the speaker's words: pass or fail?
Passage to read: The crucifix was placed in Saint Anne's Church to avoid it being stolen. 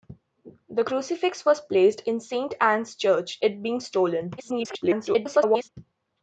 fail